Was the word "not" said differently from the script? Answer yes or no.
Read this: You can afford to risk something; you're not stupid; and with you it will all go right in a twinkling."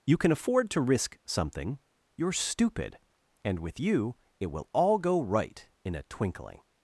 yes